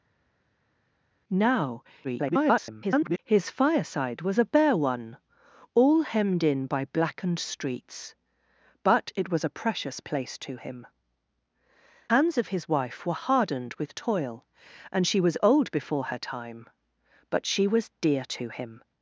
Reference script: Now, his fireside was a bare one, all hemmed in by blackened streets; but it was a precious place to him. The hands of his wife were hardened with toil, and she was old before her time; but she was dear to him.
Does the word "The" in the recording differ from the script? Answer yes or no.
yes